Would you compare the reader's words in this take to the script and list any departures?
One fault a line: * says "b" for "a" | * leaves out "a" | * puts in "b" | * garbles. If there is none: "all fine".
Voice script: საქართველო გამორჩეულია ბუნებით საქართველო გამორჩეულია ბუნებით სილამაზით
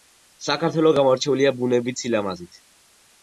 * leaves out "საქართველო გამორჩეულია ბუნებით"